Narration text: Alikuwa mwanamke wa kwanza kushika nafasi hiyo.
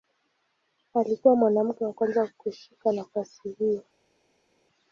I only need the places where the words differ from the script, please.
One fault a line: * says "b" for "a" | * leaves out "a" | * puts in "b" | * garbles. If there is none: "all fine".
all fine